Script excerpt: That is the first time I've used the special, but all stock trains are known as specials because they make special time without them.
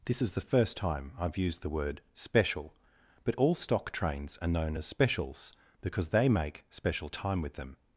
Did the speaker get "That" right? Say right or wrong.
wrong